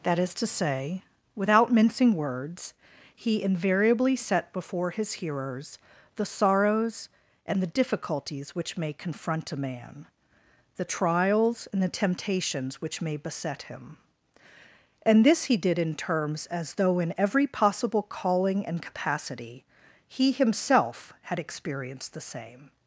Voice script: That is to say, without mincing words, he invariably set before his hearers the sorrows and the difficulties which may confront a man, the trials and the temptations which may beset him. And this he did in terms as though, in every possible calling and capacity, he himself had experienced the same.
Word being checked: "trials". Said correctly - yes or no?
yes